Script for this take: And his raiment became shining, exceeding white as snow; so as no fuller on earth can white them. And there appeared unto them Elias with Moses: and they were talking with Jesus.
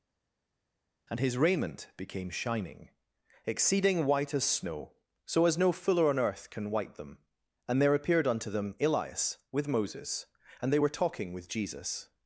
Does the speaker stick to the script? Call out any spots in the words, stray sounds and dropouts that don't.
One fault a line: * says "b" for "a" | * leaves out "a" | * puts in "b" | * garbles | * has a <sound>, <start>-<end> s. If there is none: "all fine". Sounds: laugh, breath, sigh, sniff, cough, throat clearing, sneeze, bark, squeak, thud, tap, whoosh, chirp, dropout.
all fine